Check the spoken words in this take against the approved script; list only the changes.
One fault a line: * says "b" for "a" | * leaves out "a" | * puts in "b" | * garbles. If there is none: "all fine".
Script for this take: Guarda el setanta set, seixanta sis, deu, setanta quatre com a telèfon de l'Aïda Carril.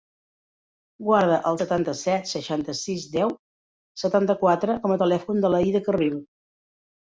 all fine